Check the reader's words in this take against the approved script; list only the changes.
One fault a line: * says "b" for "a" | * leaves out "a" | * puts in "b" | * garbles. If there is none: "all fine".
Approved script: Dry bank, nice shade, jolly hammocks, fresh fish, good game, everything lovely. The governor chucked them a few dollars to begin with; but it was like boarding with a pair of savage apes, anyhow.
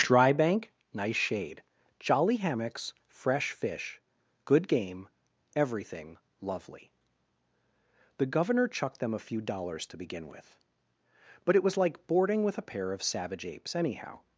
all fine